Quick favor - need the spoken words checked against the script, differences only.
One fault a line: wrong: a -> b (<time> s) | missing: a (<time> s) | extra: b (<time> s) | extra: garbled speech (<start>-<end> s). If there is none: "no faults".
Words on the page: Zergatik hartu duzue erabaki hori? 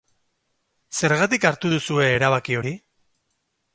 no faults